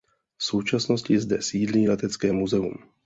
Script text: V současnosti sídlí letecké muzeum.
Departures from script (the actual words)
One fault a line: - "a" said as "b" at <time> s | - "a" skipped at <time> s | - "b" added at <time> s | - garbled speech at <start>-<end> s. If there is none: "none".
- "zde" added at 1.2 s